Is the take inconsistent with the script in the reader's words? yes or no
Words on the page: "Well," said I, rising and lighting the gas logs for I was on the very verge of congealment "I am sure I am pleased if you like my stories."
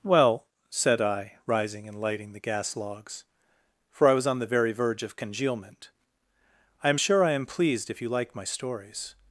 no